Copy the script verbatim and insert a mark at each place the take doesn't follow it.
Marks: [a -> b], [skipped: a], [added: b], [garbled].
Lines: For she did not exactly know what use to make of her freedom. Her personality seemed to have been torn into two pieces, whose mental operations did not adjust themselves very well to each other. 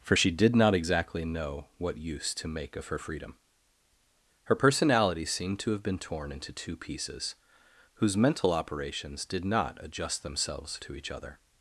For she did not exactly know what use to make of her freedom. Her personality seemed to have been torn into two pieces, whose mental operations did not adjust themselves [skipped: very well] to each other.